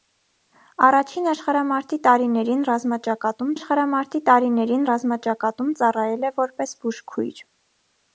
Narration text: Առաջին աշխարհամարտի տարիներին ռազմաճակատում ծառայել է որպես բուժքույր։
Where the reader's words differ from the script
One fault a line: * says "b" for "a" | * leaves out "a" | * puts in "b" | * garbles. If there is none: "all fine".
* puts in "աշխարհամարտի տարիներին ռազմաճակատում"